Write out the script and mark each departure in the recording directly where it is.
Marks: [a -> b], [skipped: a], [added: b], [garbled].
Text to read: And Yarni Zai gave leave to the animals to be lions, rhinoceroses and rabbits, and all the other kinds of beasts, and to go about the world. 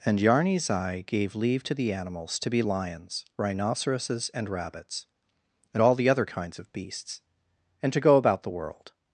And Yarni Zai gave leave to the animals to be lions, rhinoceroses and rabbits, and all the other kinds of beasts, and to go about the world.